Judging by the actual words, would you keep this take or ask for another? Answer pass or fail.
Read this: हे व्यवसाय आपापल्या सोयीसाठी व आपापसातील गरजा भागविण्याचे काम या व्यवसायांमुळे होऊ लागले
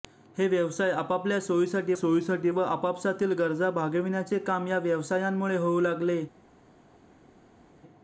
fail